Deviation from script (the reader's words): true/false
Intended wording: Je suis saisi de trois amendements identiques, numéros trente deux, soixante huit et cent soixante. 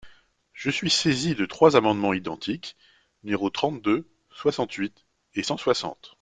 false